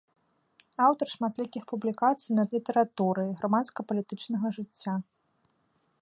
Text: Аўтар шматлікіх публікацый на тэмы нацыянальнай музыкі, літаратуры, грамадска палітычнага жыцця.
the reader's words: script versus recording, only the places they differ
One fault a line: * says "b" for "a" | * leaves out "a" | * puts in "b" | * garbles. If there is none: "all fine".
* leaves out "тэмы нацыянальнай музыкі"